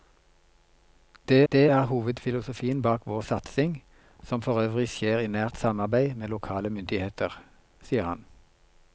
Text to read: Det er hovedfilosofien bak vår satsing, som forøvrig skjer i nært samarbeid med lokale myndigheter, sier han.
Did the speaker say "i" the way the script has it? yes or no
yes